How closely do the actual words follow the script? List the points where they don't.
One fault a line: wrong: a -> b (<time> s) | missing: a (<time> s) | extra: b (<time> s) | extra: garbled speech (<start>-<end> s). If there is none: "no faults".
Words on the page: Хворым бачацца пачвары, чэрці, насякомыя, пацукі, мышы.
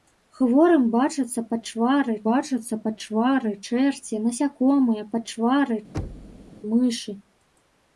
extra: бачацца пачвары (2.3 s)
wrong: пацукі -> пачвары (5.1 s)